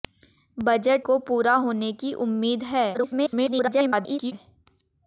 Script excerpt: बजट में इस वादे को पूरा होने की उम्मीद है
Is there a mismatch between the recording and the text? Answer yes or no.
yes